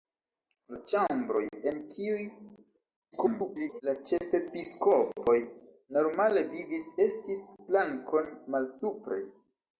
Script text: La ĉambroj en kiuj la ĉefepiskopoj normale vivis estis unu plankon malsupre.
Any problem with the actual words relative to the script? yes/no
yes